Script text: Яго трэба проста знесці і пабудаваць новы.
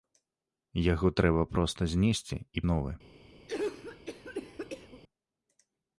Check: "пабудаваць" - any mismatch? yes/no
yes